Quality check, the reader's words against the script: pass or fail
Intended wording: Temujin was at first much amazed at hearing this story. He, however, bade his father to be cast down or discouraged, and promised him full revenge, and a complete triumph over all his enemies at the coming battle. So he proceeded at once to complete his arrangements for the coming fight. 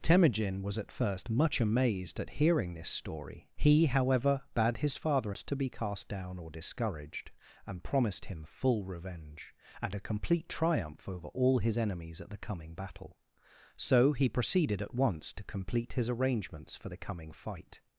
pass